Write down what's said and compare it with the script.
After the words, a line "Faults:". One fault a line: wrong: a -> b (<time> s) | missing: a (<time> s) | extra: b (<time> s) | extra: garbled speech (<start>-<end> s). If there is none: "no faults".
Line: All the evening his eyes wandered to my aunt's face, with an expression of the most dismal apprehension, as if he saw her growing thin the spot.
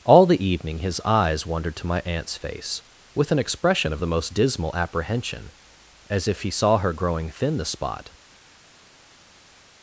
All the evening his eyes wandered to my aunt's face, with an expression of the most dismal apprehension, as if he saw her growing thin the spot.
Faults:
no faults